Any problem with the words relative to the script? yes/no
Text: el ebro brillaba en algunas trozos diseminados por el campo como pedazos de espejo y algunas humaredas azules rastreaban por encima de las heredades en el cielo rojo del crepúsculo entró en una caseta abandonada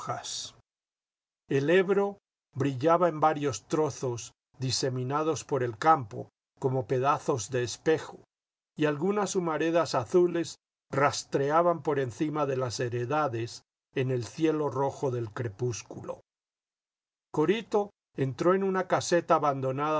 yes